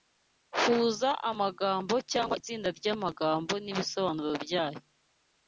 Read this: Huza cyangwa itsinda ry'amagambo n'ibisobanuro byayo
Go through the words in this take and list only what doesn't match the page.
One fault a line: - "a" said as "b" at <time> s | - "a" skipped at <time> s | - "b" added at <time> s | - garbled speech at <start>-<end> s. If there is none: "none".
- "amagambo" added at 1.3 s